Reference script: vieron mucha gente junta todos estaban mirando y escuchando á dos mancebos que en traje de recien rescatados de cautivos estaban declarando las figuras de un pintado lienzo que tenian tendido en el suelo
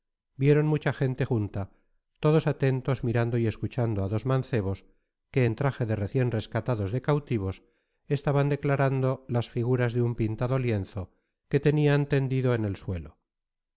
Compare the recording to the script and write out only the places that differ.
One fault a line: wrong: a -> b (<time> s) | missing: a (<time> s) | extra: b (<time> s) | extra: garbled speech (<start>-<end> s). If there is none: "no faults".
wrong: estaban -> atentos (2.5 s)